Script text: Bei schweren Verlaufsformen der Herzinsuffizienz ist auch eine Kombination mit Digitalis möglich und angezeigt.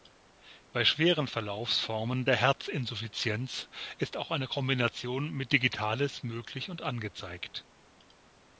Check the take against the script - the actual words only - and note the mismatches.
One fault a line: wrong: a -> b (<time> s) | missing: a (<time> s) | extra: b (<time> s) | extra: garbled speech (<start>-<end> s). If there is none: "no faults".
no faults